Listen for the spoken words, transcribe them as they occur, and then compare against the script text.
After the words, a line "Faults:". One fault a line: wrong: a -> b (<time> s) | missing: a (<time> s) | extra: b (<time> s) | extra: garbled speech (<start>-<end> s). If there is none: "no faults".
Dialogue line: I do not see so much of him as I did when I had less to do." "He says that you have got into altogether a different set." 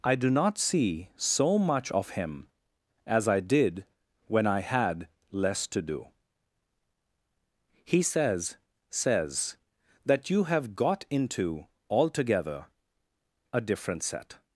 I do not see so much of him as I did when I had less to do." "He says says that you have got into altogether a different set."
Faults:
extra: says (8.9 s)